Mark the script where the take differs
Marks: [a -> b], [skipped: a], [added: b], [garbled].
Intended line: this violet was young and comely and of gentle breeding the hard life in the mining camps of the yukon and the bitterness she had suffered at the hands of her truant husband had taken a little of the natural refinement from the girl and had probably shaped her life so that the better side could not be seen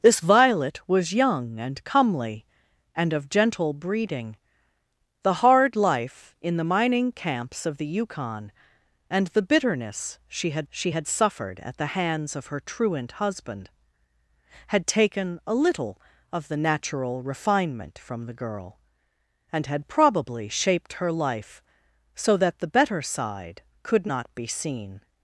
this violet was young and comely and of gentle breeding the hard life in the mining camps of the yukon and the bitterness she had [added: she had] suffered at the hands of her truant husband had taken a little of the natural refinement from the girl and had probably shaped her life so that the better side could not be seen